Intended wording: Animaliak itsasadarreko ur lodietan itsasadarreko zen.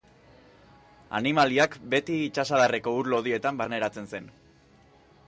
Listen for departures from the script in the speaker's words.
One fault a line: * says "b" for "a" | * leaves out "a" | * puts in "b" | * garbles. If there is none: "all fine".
* puts in "beti"
* says "barneratzen" for "itsasadarreko"